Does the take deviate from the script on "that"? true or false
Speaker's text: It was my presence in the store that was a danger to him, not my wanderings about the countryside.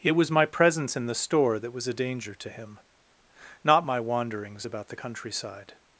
false